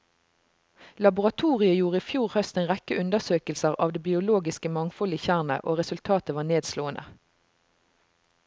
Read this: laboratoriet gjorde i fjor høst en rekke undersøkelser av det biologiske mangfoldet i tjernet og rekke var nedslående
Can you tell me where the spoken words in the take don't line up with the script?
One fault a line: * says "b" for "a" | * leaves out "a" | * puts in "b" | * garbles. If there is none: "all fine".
* says "resultatet" for "rekke"